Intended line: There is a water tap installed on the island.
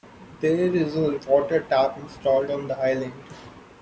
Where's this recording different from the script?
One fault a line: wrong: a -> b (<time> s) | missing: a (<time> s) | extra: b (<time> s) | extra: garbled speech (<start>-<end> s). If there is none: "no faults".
no faults